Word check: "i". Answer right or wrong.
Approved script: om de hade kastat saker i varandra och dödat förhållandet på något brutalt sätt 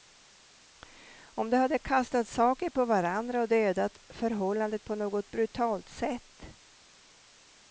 wrong